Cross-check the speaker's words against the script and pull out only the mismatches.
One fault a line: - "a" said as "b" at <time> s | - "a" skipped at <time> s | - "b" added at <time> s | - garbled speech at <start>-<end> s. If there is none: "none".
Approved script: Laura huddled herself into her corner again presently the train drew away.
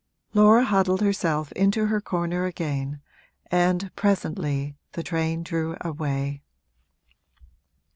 - "and" added at 3.5 s